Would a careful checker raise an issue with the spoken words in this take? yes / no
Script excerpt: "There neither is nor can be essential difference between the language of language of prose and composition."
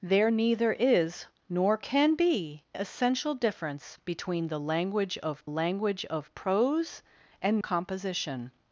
no